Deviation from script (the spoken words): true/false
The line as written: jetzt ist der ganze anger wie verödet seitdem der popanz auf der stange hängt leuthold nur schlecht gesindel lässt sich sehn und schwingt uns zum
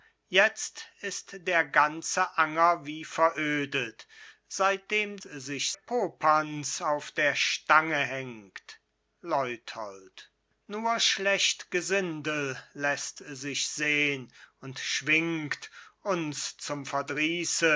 true